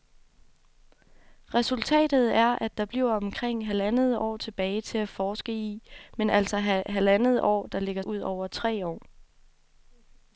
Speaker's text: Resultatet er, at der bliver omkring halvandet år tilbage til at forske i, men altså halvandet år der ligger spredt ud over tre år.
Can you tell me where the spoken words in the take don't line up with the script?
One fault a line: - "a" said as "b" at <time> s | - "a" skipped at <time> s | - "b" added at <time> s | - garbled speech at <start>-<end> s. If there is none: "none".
- "spredt" skipped at 8.0 s